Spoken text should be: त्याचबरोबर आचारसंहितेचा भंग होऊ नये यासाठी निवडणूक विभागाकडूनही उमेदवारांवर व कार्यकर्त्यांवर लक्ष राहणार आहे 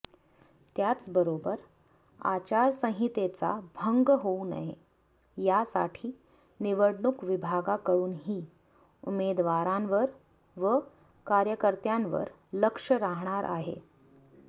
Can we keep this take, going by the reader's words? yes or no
yes